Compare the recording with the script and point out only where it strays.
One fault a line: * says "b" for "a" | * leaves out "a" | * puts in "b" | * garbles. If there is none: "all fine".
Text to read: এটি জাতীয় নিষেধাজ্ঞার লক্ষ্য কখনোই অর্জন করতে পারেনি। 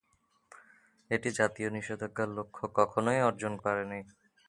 * leaves out "করতে"